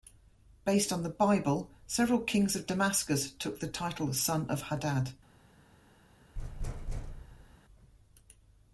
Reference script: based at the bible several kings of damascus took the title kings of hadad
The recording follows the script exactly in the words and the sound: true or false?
false